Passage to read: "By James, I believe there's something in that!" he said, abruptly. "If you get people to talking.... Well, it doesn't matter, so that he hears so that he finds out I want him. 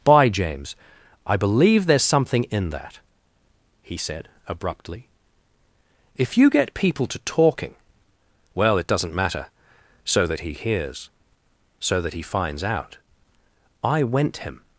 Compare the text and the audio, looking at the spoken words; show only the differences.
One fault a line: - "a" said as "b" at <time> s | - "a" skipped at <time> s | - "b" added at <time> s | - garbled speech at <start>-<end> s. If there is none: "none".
- "want" said as "went" at 14.0 s